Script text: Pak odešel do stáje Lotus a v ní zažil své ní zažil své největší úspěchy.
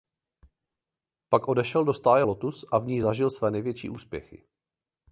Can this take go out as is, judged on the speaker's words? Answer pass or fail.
fail